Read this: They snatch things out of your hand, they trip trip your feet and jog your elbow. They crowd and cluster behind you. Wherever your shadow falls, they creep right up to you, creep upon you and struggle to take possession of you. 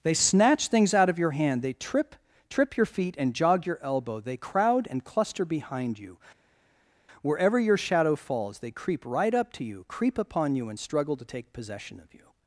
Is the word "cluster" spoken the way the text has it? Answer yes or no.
yes